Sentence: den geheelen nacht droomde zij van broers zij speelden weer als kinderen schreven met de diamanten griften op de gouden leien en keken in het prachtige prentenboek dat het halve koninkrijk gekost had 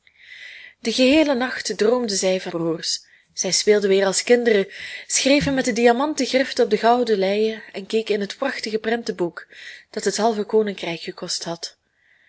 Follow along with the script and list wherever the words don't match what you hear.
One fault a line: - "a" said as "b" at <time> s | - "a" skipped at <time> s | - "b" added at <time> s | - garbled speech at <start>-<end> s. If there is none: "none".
none